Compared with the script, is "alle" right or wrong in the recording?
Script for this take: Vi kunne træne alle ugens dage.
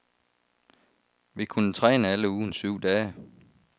right